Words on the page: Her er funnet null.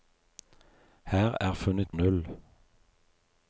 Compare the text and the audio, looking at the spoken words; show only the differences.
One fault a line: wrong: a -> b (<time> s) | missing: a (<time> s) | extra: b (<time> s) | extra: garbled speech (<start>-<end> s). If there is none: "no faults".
no faults